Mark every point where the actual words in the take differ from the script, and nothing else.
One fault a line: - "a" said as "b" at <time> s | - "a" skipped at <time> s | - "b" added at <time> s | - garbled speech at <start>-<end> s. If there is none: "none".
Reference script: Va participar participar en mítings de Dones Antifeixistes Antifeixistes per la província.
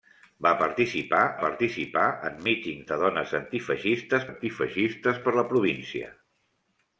none